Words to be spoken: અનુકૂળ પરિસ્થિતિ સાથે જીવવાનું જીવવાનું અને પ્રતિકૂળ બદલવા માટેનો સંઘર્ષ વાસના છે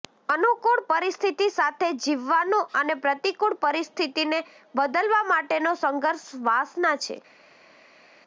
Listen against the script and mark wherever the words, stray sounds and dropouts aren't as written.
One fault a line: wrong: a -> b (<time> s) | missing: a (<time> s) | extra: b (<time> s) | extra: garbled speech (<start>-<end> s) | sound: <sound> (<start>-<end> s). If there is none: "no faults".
missing: જીવવાનું (2.7 s)
extra: પરિસ્થિતિને (3.6 s)